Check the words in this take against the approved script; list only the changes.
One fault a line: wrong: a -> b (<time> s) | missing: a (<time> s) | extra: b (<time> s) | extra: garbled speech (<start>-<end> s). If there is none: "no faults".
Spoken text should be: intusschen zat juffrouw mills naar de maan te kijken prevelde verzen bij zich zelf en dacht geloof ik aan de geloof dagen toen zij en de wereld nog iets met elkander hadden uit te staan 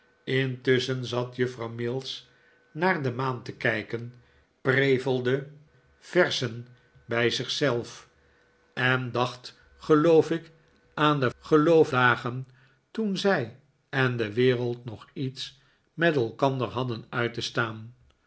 no faults